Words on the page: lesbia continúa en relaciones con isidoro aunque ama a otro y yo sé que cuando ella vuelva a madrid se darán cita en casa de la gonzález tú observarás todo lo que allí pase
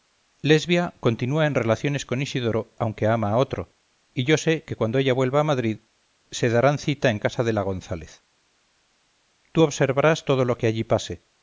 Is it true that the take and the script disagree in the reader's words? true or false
false